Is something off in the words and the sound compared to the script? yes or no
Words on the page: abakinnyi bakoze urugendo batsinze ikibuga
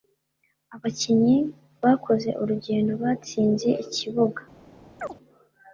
yes